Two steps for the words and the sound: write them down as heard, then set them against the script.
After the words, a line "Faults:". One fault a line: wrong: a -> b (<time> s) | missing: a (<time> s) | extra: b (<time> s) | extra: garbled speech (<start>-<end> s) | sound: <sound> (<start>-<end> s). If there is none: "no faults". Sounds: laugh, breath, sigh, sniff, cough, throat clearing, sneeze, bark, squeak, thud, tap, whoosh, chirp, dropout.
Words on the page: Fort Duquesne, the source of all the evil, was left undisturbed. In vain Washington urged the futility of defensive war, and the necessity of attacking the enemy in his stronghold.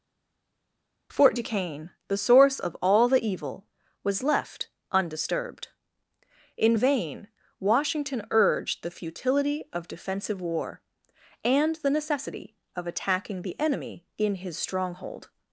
Fort Duquesne, the source of all the evil, was left undisturbed. In vain Washington urged the futility of defensive war, and the necessity of attacking the enemy in his stronghold.
Faults:
no faults